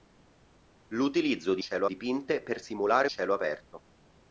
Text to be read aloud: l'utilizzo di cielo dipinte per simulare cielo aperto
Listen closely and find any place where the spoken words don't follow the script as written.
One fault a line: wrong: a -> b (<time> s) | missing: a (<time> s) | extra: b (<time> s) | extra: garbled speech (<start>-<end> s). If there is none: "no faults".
no faults